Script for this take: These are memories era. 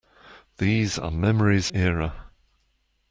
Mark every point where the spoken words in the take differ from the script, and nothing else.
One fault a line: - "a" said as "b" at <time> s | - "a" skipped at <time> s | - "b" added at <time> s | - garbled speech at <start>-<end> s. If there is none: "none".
none